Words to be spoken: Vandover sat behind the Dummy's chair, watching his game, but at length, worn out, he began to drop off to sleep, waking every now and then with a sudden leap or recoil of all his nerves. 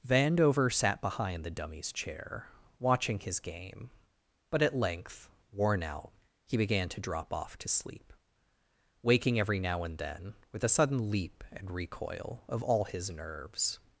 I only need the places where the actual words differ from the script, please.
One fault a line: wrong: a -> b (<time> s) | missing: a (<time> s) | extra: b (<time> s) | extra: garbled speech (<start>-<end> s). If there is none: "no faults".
wrong: or -> and (11.5 s)